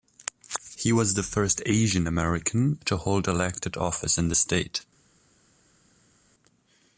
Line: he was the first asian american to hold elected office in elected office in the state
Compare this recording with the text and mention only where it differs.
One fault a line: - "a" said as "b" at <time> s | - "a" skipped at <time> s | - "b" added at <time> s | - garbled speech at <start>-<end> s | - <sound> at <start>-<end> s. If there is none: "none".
- "elected office in" skipped at 4.3 s